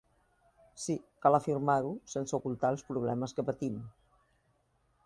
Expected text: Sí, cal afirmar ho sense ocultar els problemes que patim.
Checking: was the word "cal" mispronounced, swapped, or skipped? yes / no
no